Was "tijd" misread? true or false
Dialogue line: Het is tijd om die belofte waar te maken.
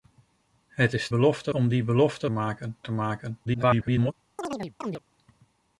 true